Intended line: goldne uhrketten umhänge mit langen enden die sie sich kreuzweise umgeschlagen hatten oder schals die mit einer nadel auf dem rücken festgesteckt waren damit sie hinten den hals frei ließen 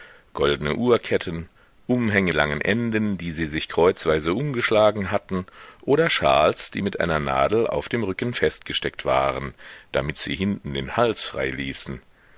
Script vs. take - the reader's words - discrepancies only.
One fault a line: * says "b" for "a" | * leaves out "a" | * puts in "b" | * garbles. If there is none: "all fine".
* leaves out "mit"